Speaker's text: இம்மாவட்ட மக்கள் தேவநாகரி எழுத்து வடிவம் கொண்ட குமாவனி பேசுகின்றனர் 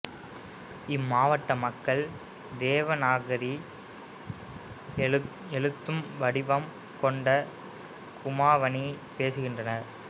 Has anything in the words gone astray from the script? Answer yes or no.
no